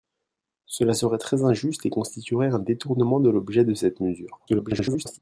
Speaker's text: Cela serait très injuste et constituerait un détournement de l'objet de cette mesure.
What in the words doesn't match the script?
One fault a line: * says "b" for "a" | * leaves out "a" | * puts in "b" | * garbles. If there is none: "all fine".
* garbles